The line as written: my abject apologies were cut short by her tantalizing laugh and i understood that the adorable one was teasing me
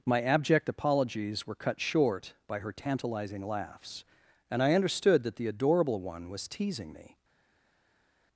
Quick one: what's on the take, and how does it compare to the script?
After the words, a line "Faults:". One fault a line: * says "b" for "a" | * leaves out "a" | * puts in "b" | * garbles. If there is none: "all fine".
my abject apologies were cut short by her tantalizing laughs and i understood that the adorable one was teasing me
Faults:
* says "laughs" for "laugh"